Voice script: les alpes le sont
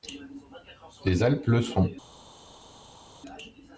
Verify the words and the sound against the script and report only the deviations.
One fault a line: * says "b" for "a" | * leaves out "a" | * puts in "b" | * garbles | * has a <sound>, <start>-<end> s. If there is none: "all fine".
all fine